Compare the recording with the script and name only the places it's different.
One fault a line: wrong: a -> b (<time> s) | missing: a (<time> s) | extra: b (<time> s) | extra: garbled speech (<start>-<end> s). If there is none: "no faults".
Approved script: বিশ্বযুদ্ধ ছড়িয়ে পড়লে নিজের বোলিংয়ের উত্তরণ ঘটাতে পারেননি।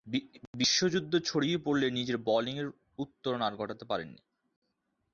extra: আর (3.4 s)